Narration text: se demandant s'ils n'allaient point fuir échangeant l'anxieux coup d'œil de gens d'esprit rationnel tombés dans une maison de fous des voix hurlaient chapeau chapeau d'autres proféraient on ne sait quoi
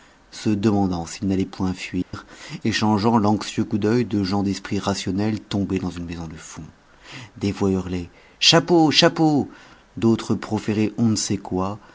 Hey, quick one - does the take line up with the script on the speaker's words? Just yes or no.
yes